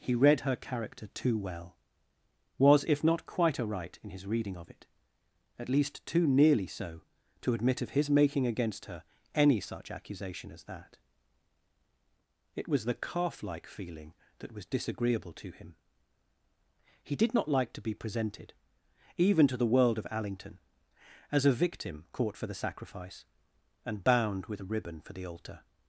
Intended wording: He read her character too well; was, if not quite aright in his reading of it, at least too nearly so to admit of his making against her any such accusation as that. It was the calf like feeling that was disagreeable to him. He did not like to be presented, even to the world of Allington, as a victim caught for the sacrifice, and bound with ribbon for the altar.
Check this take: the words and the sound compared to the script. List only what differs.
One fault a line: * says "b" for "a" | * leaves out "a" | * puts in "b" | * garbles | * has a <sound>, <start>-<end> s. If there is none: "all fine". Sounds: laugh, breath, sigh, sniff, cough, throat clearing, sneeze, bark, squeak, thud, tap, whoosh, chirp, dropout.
* puts in "a"